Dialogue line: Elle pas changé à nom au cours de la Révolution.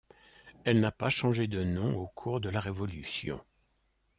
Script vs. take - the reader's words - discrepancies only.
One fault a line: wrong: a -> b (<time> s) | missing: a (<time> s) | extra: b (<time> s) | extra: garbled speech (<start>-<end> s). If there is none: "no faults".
extra: n'a (0.8 s)
wrong: à -> de (1.4 s)